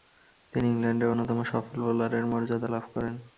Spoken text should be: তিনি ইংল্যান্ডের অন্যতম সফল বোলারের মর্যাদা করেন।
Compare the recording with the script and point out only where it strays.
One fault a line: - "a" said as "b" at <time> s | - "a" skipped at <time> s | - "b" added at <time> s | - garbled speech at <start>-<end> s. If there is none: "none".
- "লাভ" added at 2.7 s